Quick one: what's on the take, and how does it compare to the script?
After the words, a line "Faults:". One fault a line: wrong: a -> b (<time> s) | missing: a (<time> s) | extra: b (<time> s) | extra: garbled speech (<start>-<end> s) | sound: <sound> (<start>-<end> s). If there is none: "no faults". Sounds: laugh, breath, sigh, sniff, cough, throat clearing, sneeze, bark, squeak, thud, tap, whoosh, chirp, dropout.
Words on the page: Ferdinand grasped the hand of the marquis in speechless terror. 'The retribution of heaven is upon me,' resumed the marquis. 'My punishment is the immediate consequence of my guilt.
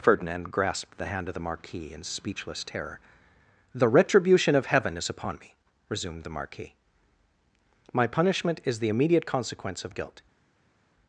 Ferdinand grasped the hand of the marquis in speechless terror. 'The retribution of heaven is upon me,' resumed the marquis. 'My punishment is the immediate consequence of guilt.
Faults:
missing: my (9.9 s)